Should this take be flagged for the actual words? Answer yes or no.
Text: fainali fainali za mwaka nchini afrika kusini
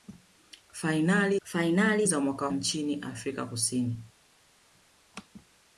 no